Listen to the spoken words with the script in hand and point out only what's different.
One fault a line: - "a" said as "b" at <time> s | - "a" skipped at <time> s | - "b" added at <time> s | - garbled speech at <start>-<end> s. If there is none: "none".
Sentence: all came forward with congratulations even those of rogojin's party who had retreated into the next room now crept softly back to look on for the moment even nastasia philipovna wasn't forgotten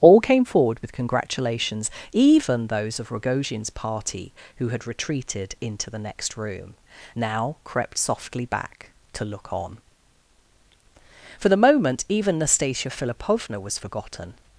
- "wasn't" said as "was" at 13.6 s